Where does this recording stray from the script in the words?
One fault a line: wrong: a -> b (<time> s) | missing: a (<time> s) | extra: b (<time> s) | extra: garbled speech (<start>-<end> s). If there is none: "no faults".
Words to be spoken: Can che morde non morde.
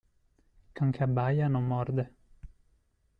wrong: morde -> abbaia (1.0 s)